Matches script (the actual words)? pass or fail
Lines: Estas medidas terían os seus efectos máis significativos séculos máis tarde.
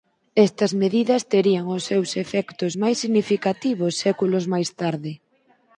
pass